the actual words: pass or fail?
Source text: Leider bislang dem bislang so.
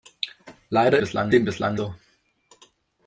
pass